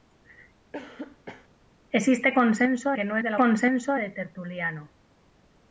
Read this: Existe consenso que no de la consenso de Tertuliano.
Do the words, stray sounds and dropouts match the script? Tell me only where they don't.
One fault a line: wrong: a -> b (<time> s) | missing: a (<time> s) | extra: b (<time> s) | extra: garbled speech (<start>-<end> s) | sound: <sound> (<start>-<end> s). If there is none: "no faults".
sound: cough (0.7-1.5 s)